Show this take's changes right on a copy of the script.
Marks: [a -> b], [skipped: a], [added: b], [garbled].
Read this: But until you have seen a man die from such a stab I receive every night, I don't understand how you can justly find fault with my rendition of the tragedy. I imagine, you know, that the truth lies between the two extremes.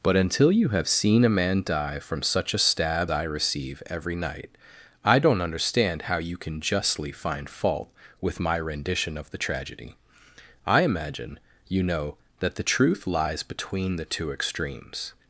But until you have seen a man die from such a stab I receive every night, I don't understand how you can justly find fault with my rendition of the tragedy. I imagine, you know, that the truth lies between the two extremes.